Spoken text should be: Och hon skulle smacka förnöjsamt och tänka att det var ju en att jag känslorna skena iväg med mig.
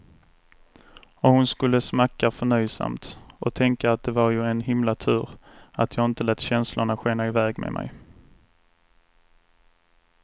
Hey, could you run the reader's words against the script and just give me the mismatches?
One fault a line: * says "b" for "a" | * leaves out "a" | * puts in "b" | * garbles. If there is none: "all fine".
* puts in "himla tur"
* puts in "inte lät"